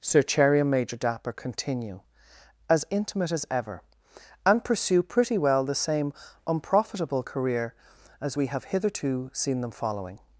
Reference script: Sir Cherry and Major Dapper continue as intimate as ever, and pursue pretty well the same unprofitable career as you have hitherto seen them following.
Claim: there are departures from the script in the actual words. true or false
true